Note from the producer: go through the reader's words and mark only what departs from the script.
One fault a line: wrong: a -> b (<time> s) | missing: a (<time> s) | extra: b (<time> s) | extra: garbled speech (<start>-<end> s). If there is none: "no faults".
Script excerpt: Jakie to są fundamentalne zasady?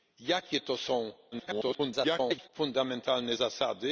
extra: garbled speech (1.3-2.5 s)